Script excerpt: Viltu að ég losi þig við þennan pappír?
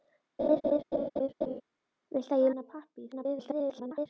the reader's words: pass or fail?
fail